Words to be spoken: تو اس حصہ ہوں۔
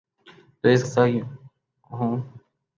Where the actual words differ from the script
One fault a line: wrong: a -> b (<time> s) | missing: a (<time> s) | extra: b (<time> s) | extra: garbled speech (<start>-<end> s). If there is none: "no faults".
no faults